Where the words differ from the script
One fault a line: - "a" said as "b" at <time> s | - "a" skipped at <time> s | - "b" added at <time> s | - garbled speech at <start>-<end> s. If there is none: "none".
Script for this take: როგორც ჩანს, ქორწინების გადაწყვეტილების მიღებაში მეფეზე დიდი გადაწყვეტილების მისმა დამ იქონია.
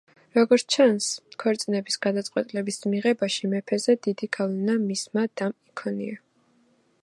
- "გადაწყვეტილების" said as "გავლენა" at 4.4 s